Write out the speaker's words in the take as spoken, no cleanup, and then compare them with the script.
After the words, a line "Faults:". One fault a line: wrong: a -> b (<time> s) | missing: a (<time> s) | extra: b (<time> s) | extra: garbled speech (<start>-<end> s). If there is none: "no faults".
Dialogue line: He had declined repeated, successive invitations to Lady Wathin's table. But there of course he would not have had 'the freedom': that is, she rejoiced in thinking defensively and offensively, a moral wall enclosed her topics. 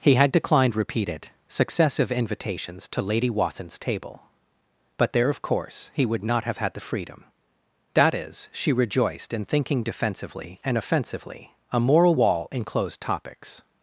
He had declined repeated, successive invitations to Lady Wathin's table. But there of course he would not have had 'the freedom': that is, she rejoiced in thinking defensively and offensively, a moral wall enclosed topics.
Faults:
missing: her (13.0 s)